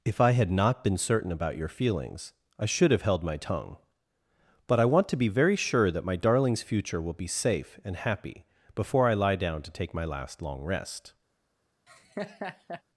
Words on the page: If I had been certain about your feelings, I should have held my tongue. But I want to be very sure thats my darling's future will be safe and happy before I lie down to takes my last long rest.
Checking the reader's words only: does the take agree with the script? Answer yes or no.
no